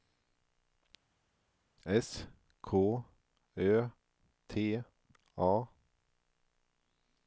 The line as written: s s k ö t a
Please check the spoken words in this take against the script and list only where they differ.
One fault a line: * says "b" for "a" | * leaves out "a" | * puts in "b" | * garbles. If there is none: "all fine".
* leaves out "s"